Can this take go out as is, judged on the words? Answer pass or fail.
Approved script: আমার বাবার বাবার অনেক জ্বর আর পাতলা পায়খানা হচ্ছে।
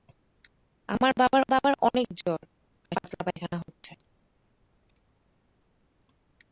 pass